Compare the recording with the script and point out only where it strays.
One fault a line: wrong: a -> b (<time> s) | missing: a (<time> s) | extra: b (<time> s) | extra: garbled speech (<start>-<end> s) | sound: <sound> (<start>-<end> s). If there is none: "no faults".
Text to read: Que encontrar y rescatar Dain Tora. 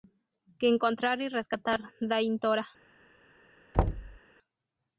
sound: thud (3.7-4.2 s)